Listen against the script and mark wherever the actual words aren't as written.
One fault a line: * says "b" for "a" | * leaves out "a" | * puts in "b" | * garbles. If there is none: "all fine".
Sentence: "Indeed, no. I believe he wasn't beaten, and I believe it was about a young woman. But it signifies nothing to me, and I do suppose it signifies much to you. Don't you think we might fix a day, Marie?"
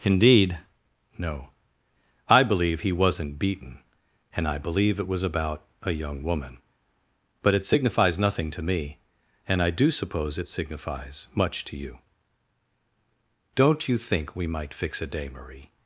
all fine